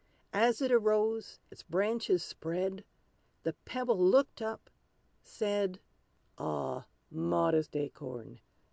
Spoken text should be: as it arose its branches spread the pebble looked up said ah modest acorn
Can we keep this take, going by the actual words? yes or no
yes